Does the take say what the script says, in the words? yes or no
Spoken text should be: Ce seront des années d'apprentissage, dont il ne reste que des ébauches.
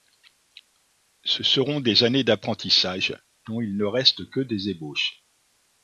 yes